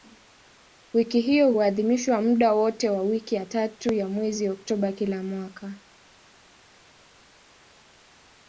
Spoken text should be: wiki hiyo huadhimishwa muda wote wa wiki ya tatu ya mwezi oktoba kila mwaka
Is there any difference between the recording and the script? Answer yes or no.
no